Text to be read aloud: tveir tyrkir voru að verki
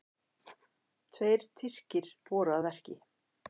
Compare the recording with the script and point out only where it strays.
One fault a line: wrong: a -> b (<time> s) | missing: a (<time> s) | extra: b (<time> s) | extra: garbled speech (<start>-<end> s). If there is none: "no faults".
no faults